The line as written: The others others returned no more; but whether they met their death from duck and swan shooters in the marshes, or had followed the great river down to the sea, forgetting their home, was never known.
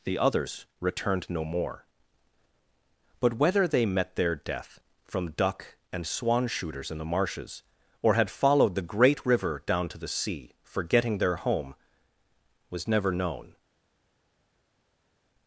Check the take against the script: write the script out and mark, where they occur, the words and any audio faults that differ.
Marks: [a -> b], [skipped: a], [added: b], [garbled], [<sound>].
The others [skipped: others] returned no more; but whether they met their death from duck and swan shooters in the marshes, or had followed the great river down to the sea, forgetting their home, was never known.